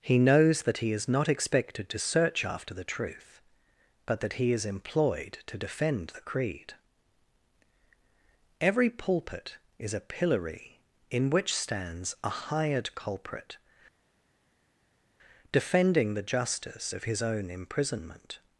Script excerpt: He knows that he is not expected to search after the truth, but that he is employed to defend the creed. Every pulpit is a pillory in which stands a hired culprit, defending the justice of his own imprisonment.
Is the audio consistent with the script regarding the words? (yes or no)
yes